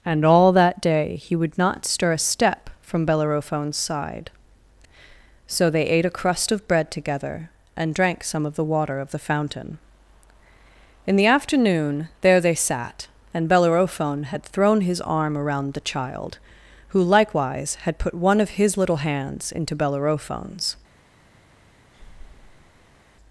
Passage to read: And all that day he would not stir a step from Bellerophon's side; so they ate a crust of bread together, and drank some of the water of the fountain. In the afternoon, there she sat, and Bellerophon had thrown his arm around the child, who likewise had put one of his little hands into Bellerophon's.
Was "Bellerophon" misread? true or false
false